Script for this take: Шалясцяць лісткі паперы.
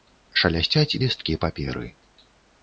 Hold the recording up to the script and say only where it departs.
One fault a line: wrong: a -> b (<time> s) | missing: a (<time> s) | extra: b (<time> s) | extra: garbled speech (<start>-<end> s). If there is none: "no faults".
no faults